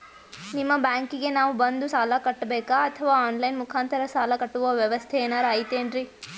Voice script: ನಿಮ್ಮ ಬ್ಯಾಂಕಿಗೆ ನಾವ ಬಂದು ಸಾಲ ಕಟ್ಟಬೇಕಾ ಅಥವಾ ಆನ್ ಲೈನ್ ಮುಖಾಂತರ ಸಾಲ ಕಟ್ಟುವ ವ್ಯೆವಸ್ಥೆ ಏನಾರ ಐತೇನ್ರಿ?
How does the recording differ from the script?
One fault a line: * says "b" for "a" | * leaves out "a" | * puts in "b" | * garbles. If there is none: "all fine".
all fine